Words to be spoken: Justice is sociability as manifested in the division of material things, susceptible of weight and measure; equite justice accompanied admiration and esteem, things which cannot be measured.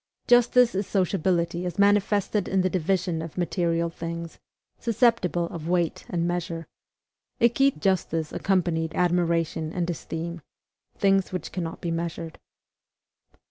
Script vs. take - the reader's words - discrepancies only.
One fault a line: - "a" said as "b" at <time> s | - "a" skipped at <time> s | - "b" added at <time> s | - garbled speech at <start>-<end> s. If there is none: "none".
none